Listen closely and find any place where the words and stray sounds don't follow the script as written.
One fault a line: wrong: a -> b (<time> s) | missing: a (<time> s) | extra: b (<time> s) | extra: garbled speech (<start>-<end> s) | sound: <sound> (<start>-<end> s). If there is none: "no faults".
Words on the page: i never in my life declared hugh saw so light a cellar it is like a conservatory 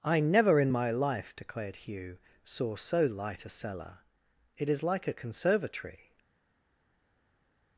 no faults